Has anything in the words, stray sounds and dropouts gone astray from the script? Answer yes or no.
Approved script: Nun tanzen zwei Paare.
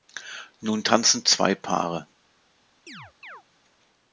yes